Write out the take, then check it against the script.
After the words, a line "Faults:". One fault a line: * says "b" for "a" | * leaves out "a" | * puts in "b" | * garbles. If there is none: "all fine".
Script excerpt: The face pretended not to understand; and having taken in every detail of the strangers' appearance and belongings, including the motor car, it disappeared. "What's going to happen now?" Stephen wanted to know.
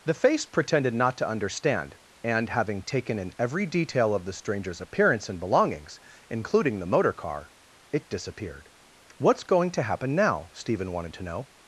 The face pretended not to understand; and having taken in every detail of the strangers' appearance and belongings, including the motor car, it disappeared. "What's going to happen now?" Stephen wanted to know.
Faults:
all fine